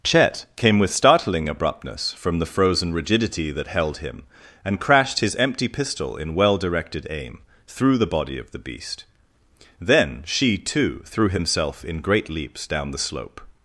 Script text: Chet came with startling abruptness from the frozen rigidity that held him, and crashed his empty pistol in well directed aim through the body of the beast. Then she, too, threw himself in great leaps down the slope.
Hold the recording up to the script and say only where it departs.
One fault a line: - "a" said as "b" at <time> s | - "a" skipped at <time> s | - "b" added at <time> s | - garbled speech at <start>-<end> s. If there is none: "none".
none